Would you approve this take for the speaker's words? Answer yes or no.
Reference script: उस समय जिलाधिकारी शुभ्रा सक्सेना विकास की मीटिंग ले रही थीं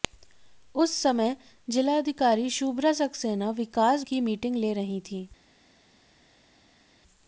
yes